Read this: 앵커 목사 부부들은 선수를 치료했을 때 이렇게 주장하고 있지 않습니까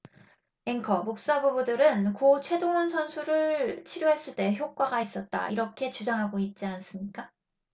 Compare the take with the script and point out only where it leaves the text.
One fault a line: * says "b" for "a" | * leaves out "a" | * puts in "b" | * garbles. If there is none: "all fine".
* puts in "고 최동원"
* puts in "효과가 있었다"